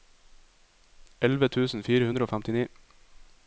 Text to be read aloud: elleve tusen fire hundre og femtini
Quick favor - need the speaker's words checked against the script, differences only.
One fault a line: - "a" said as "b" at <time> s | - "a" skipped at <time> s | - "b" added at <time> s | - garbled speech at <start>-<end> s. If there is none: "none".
none